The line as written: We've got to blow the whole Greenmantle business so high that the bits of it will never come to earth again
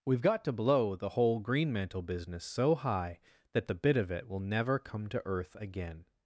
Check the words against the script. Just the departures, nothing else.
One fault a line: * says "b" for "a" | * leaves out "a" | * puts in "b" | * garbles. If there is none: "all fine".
* says "bit" for "bits"